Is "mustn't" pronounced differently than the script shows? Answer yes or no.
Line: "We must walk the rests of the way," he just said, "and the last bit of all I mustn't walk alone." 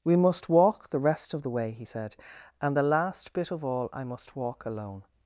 yes